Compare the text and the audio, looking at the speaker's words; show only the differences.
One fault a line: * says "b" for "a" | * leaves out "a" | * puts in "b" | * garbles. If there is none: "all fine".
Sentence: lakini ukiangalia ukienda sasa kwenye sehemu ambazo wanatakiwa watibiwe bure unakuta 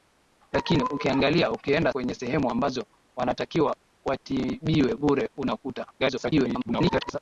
* leaves out "sasa"
* garbles